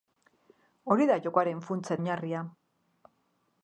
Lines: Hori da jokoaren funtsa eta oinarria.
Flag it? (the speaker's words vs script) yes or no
yes